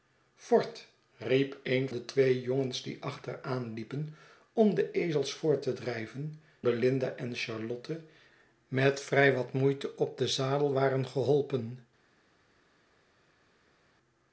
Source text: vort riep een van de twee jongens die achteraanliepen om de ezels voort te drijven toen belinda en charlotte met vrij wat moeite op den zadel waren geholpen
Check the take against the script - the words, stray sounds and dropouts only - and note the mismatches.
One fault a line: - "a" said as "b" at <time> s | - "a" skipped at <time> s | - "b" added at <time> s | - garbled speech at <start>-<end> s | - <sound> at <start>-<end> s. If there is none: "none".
- "van" skipped at 1.9 s
- "toen" skipped at 6.4 s